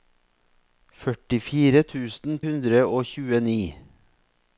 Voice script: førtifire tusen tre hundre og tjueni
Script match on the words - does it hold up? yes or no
no